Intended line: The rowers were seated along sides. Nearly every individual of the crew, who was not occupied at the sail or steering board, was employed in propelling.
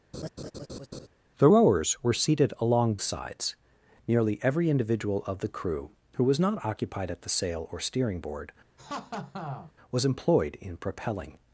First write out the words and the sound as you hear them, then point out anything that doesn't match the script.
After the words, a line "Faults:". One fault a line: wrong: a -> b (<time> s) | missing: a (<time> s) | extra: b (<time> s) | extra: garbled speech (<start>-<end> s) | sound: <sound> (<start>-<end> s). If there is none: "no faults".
The rowers were seated along sides. Nearly every individual of the crew, who was not occupied at the sail or steering board, was employed in propelling.
Faults:
sound: laugh (0.1-1.1 s)
sound: laugh (8.8-9.7 s)